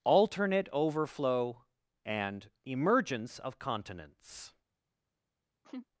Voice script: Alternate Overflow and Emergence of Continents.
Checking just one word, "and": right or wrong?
right